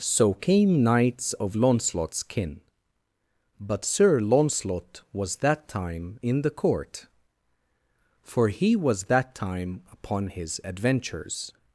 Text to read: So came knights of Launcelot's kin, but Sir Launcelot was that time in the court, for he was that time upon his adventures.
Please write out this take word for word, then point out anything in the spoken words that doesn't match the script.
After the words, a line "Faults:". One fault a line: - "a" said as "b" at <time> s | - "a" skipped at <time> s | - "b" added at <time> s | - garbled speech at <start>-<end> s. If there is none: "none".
So came knights of Launcelot's kin, but Sir Launcelot was that time in the court, for he was that time upon his adventures.
Faults:
none